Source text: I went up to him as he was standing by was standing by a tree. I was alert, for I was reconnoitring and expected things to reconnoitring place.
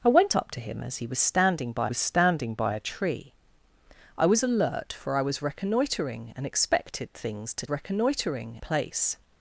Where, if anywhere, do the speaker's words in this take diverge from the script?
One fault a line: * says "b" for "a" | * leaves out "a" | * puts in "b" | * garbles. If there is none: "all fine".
all fine